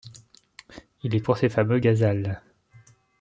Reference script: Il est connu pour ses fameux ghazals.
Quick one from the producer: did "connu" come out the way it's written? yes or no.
no